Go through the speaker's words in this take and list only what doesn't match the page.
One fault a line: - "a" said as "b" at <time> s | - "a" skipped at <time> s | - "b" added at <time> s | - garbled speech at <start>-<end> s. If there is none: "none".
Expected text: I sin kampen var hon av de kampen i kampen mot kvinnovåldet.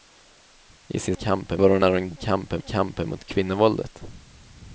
none